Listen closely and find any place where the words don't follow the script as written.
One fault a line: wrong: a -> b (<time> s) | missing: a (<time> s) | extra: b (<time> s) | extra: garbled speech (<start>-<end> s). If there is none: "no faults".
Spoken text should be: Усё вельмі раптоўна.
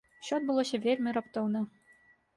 extra: адбылося (0.4 s)